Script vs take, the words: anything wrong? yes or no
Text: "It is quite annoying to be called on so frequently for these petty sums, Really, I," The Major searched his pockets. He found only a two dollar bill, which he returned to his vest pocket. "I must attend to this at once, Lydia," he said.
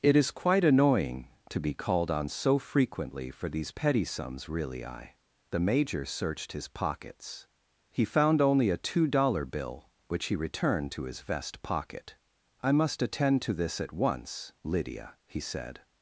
no